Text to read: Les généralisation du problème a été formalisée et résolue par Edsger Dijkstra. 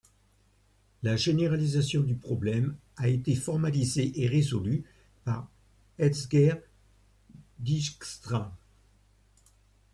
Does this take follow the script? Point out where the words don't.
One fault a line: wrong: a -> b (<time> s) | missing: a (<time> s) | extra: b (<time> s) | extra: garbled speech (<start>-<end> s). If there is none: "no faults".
wrong: Les -> La (1.0 s)